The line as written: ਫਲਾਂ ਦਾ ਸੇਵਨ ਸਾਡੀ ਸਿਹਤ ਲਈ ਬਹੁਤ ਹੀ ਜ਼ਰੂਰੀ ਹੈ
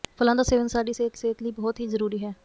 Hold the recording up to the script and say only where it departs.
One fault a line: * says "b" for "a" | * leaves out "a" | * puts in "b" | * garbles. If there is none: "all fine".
* puts in "ਸਿਹਤ"